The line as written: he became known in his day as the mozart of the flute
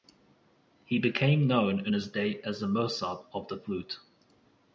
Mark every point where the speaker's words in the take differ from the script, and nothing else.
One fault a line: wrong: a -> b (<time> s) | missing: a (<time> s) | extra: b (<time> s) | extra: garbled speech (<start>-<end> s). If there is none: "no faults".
no faults